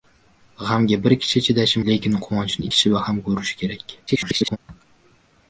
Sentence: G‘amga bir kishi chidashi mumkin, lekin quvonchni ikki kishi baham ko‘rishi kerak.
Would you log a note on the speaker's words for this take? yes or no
yes